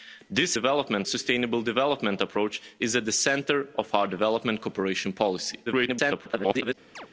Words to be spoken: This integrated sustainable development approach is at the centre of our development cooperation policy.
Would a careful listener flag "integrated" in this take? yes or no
yes